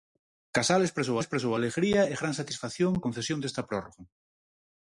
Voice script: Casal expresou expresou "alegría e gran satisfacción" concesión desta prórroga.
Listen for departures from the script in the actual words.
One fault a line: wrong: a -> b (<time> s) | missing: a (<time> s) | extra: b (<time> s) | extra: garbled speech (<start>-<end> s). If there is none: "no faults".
no faults